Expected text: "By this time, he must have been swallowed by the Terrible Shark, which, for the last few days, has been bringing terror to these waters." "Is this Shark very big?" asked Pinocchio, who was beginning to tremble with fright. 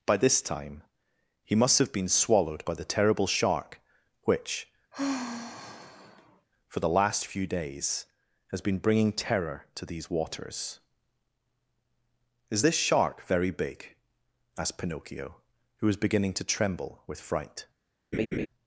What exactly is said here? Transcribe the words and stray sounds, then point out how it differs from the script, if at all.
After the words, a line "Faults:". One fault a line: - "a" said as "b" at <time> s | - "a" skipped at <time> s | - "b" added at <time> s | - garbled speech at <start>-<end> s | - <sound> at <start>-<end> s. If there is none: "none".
"By this time, he must have been swallowed by the Terrible Shark, which, for the last few days, has been bringing terror to these waters." "Is this Shark very big?" asked Pinocchio, who was beginning to tremble with fright.
Faults:
- sigh at 4.9-6.5 s
- laugh at 18.1-18.5 s